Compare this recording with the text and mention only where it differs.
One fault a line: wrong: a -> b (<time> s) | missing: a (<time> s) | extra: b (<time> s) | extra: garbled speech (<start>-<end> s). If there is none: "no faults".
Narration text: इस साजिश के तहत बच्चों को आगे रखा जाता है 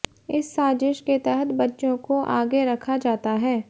no faults